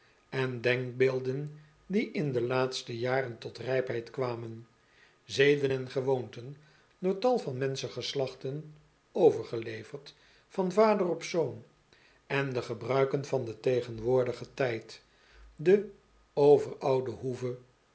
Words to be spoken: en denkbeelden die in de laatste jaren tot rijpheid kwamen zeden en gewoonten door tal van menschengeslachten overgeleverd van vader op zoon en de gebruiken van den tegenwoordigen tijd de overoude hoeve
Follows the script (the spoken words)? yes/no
yes